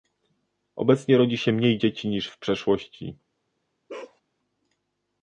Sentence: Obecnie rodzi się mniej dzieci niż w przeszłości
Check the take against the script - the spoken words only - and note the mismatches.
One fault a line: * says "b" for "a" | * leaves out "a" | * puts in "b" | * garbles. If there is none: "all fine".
all fine